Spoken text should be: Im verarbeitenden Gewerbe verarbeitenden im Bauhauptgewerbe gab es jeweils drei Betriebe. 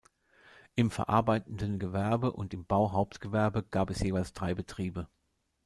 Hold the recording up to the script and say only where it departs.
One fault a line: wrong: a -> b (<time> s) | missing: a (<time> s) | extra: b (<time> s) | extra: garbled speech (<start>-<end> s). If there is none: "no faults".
wrong: verarbeitenden -> und (2.3 s)